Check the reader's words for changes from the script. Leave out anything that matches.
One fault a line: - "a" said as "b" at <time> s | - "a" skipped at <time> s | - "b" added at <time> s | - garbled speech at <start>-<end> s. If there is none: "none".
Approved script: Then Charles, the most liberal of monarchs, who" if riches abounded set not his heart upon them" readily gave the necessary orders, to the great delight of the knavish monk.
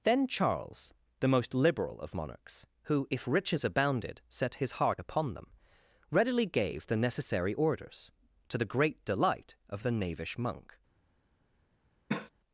- "not" skipped at 4.5 s